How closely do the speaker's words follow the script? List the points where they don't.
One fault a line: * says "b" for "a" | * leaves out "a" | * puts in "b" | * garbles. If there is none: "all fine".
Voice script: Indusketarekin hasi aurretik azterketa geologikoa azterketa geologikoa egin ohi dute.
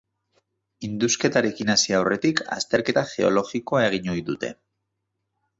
* leaves out "azterketa geologikoa"